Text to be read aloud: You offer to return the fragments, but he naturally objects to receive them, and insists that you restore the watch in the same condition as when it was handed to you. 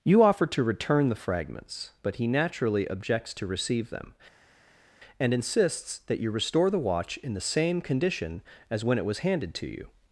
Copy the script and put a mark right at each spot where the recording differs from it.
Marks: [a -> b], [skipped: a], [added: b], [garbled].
You offer to return the fragments, but he naturally objects to receive them, and insists that you restore the watch in the same condition as when it was handed to you.